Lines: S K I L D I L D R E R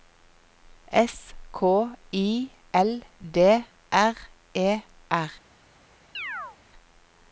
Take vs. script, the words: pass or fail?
fail